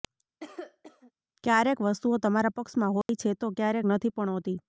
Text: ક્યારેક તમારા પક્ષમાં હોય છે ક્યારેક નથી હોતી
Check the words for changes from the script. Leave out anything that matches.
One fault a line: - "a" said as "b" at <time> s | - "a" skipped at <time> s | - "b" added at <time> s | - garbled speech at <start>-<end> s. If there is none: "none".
- "વસ્તુઓ" added at 1.8 s
- "તો" added at 3.4 s
- "પણ" added at 4.2 s